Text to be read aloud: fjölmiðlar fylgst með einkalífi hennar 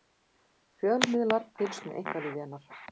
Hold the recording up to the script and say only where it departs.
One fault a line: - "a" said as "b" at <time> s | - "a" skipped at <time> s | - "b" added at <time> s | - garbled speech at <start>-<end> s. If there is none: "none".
none